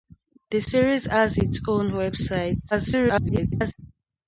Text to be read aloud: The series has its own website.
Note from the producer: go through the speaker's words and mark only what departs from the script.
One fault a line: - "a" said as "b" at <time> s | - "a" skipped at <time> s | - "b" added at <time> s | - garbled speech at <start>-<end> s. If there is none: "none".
- garbled speech at 2.7-3.7 s